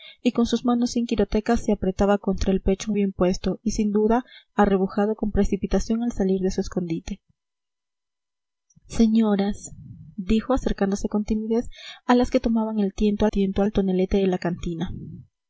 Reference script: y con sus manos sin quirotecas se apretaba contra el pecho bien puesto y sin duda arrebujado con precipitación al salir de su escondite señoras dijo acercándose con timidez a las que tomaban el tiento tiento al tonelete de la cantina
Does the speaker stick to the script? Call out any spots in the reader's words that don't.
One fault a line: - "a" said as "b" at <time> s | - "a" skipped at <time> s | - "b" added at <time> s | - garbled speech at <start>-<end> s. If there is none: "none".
none